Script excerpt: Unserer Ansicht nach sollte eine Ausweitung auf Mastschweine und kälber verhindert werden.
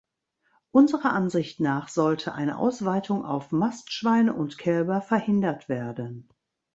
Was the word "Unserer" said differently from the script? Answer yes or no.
no